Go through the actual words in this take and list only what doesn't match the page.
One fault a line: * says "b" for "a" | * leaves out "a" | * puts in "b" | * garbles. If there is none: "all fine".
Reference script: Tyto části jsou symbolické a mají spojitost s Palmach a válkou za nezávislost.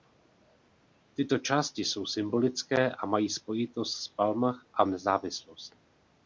* leaves out "válkou za"